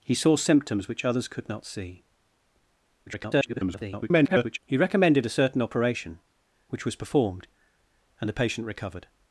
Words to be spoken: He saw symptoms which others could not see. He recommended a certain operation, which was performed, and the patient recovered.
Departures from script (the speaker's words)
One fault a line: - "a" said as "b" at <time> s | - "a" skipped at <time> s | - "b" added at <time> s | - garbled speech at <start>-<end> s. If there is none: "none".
- garbled speech at 3.1-4.6 s